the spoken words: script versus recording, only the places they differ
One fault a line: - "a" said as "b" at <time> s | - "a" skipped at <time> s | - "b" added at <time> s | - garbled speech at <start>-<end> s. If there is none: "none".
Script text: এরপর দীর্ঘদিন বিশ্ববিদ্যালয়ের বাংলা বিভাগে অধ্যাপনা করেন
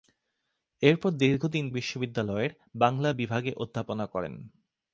none